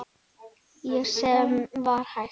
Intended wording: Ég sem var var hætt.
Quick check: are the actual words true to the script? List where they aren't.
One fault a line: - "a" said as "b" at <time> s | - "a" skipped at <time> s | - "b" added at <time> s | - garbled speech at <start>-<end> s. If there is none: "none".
- "var" skipped at 2.0 s